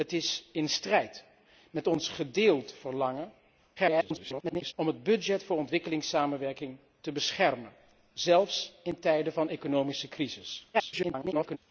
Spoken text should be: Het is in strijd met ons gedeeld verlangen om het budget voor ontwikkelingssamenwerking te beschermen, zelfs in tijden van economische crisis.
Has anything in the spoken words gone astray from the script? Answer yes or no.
yes